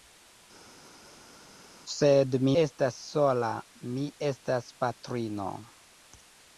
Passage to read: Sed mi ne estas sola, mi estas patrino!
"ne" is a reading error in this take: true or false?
true